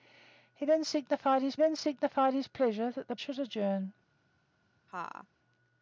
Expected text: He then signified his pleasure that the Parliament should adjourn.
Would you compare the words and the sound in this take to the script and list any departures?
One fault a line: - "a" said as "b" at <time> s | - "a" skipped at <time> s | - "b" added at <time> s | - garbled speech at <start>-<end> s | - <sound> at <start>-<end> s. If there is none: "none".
- "then signified his" added at 1.6 s
- "Parliament" skipped at 3.2 s
- laugh at 4.9-5.3 s